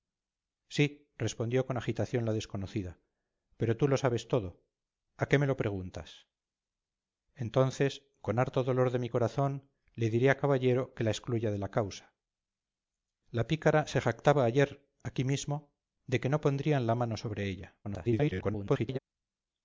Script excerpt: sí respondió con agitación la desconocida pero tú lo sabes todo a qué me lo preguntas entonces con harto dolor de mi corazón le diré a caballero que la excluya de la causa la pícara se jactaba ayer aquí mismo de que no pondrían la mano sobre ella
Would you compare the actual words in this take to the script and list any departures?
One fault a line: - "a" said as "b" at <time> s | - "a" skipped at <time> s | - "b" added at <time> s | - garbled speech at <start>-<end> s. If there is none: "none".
- garbled speech at 17.8-19.0 s